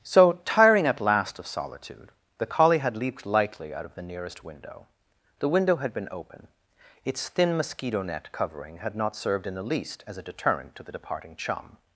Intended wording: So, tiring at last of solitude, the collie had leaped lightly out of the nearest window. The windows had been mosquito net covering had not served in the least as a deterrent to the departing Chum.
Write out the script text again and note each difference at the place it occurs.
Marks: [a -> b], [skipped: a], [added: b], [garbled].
So, tiring at last of solitude, the collie had leaped lightly out of the nearest window. The [windows -> window] had been [added: open Its thin] mosquito net covering had not served in the least as a deterrent to the departing Chum.